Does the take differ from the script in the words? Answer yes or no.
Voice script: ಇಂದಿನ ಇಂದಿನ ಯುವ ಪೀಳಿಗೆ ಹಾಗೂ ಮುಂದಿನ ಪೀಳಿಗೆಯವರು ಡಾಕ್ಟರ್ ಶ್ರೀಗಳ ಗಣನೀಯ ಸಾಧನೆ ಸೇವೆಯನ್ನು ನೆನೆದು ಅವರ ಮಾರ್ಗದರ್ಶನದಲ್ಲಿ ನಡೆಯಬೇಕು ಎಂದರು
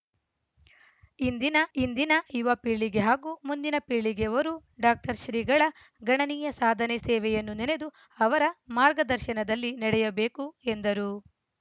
no